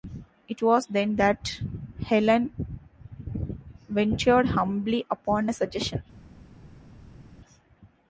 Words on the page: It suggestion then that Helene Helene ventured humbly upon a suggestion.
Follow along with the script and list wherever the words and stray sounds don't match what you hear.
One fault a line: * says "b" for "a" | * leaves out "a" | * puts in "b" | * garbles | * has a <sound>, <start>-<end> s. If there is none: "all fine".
* says "was" for "suggestion"
* leaves out "Helene"